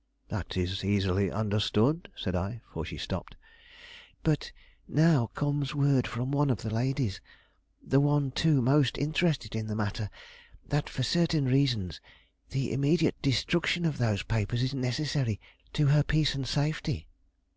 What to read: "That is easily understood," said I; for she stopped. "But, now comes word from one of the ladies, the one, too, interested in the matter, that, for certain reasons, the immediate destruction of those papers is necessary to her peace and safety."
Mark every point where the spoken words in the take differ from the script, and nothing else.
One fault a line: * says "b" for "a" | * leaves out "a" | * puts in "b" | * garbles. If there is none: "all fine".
* puts in "most"